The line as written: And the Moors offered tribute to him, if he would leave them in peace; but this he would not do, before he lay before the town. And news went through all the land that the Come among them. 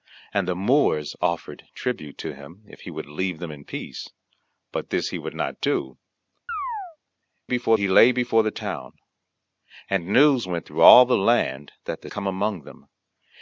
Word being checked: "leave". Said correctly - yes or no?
yes